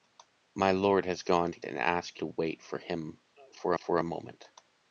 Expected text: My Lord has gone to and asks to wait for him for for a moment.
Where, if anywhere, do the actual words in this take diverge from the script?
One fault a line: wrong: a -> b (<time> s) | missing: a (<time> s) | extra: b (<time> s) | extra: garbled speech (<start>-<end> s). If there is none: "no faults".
no faults